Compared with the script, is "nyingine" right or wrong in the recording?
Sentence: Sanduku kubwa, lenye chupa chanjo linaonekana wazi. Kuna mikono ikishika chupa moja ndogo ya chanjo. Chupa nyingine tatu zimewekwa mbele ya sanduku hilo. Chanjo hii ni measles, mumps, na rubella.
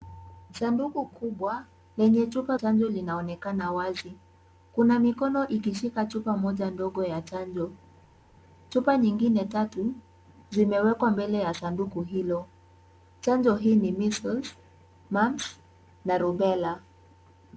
right